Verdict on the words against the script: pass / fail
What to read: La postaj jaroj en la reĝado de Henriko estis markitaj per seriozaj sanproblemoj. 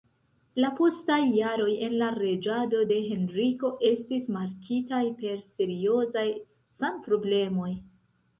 pass